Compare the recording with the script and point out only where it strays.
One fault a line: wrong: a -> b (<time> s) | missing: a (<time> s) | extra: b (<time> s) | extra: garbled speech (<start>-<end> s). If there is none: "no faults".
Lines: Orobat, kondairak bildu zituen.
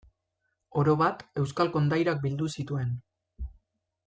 extra: euskal (1.4 s)